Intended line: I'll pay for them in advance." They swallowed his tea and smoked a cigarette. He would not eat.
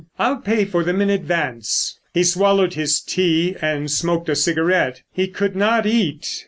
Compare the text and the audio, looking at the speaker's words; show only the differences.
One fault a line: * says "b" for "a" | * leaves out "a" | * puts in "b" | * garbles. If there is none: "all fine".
* says "He" for "They"
* says "could" for "would"